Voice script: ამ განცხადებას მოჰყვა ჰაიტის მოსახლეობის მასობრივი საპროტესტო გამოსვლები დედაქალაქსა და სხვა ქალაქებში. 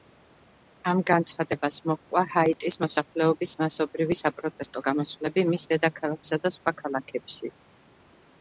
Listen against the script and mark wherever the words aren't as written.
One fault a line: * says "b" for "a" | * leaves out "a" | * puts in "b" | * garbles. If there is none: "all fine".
* puts in "მის"